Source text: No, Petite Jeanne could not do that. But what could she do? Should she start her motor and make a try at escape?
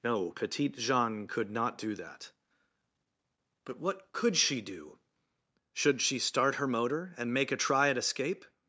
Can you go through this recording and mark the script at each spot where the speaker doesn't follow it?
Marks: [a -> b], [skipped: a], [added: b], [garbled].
No, Petite Jeanne could not do that. But what could she do? Should she start her motor and make a try at escape?